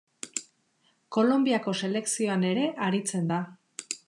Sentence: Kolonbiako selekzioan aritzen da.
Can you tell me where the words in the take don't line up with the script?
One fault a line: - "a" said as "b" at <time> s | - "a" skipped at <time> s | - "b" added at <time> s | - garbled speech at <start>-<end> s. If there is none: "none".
- "ere" added at 2.5 s